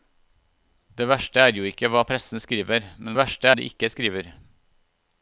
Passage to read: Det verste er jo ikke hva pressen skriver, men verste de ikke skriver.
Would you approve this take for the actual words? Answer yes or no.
yes